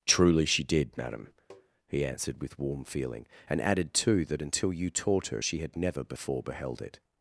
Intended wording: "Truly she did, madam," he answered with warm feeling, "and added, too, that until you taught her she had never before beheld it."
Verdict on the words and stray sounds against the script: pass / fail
fail